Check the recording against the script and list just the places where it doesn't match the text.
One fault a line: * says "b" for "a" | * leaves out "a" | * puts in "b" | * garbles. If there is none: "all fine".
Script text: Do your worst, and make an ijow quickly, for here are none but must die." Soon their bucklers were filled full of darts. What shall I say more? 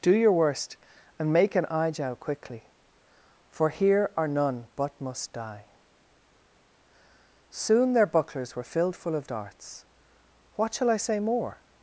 all fine